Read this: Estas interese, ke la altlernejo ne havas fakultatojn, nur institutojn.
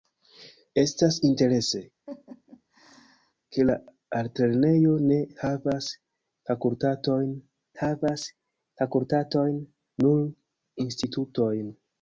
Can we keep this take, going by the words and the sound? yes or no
no